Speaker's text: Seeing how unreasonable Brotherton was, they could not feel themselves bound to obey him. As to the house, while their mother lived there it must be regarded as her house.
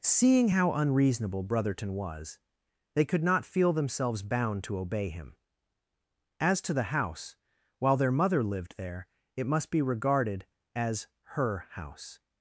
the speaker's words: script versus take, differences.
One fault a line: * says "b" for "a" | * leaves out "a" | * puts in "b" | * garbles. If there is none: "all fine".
all fine